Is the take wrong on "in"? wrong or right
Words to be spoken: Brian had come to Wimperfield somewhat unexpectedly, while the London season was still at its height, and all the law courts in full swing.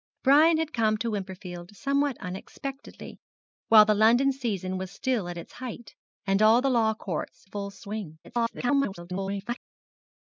wrong